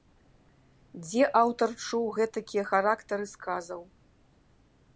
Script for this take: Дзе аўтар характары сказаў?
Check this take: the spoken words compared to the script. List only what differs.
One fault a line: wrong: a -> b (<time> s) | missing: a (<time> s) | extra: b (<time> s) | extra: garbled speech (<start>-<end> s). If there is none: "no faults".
extra: чуў гэтакія (1.9 s)